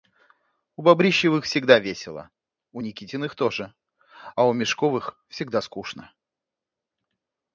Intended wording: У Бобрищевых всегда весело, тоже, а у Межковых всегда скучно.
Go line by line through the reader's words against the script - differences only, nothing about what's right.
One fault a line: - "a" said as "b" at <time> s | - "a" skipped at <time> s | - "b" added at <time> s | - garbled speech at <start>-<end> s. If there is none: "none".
- "у Никитиных" added at 2.7 s